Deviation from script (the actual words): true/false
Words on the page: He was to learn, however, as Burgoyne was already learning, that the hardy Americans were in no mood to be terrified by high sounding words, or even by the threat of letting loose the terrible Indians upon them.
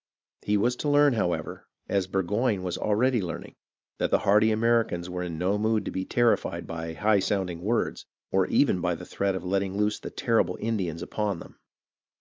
false